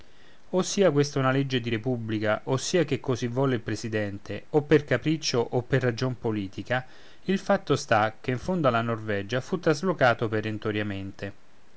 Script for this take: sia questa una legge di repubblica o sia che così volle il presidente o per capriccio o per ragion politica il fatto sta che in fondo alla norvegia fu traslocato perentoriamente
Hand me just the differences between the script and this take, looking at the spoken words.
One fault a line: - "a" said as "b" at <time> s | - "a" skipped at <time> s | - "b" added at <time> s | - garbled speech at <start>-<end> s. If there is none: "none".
none